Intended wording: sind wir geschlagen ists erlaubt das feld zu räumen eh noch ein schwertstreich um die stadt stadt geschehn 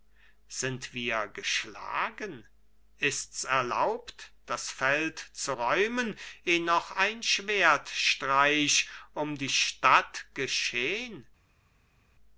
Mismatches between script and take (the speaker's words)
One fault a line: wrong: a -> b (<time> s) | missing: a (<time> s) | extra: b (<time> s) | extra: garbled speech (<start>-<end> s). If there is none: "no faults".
missing: stadt (10.3 s)